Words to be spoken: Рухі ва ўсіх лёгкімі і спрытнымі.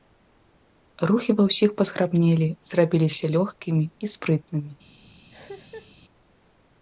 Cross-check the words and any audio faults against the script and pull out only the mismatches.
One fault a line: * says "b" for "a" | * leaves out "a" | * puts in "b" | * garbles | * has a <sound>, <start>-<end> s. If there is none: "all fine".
* puts in "пазграбнелі зрабіліся"
* has a cough, 5.3-5.9 s